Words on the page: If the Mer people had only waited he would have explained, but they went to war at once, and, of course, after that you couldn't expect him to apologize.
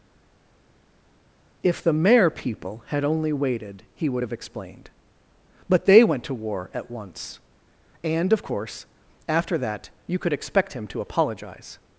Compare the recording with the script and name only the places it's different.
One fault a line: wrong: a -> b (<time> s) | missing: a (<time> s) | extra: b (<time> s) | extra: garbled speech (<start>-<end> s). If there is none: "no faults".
wrong: couldn't -> could (10.2 s)